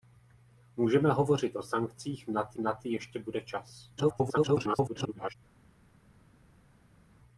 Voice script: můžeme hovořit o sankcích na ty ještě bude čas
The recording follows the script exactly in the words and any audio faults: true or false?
false